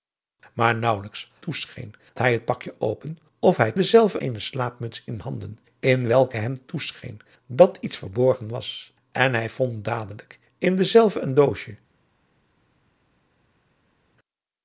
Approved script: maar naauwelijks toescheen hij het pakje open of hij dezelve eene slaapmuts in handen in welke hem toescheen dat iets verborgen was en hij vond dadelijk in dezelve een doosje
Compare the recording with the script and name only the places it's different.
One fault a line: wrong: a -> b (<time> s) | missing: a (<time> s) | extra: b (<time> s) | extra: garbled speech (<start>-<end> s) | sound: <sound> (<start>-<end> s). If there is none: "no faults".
no faults